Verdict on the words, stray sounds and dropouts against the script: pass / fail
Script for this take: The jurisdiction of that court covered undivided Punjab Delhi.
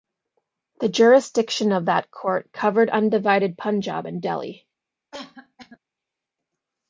fail